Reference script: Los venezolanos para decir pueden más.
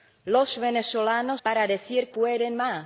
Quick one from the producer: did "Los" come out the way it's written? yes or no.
yes